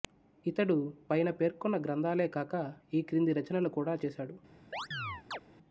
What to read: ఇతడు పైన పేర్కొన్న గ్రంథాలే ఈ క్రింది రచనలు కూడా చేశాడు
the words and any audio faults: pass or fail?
fail